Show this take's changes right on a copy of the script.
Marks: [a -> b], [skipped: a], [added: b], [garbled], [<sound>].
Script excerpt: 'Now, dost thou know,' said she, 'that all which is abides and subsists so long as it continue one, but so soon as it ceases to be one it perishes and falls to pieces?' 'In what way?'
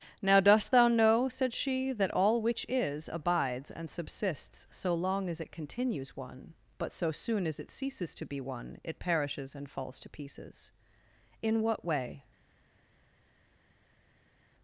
'Now, dost thou know,' said she, 'that all which is abides and subsists so long as it [continue -> continues] one, but so soon as it ceases to be one it perishes and falls to pieces?' 'In what way?'